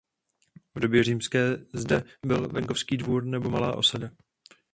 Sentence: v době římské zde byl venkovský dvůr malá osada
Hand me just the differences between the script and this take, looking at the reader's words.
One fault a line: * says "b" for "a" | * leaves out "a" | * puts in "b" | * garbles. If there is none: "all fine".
* puts in "nebo"